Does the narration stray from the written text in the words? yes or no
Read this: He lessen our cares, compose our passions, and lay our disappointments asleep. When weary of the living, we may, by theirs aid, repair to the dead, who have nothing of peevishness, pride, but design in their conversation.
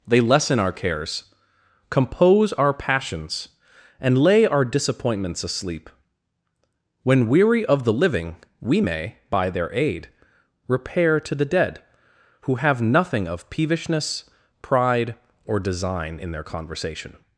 yes